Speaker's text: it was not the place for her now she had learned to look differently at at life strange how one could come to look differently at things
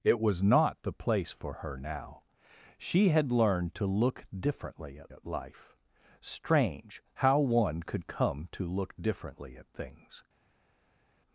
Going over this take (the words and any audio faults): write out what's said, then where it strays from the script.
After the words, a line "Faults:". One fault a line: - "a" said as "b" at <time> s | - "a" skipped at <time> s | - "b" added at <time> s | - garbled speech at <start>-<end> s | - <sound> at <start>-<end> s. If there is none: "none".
it was not the place for her now she had learned to look differently at at life strange how one could come to look differently at things
Faults:
none